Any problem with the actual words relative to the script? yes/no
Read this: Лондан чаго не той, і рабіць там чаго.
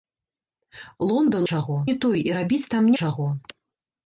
no